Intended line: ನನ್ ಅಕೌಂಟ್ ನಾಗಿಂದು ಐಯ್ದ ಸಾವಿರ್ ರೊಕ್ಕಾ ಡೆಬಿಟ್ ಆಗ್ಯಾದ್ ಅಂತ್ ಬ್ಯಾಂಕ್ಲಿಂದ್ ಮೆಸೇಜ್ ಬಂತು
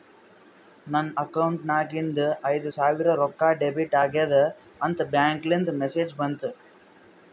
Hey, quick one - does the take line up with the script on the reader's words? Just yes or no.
yes